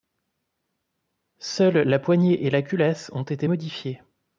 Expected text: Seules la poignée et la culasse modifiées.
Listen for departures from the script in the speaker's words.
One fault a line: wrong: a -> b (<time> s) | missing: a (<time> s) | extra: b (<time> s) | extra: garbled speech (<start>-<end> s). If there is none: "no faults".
extra: ont été (3.1 s)